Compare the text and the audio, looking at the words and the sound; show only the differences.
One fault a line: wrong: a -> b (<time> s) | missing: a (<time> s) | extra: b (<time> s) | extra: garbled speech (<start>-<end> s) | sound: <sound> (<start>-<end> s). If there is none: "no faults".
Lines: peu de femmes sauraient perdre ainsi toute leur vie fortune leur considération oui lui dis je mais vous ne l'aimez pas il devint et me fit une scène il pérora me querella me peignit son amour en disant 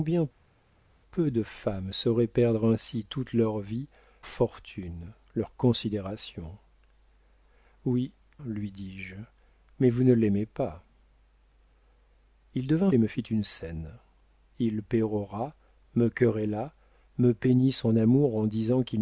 no faults